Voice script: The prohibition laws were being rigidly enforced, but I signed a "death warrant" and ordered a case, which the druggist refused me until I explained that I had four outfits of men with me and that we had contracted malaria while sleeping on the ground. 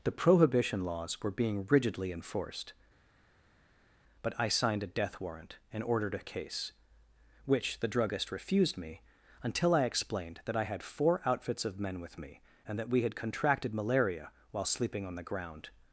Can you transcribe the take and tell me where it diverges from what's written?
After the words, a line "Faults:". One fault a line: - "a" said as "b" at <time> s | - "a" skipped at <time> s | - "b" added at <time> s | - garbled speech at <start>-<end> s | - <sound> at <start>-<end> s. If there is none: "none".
The prohibition laws were being rigidly enforced, but I signed a "death warrant" and ordered a case, which the druggist refused me until I explained that I had four outfits of men with me and that we had contracted malaria while sleeping on the ground.
Faults:
none